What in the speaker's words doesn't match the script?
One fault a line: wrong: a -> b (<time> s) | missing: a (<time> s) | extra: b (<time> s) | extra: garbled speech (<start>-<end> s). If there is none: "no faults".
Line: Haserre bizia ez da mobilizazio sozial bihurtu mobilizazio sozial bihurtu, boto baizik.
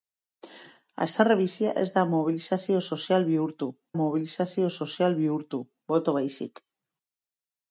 no faults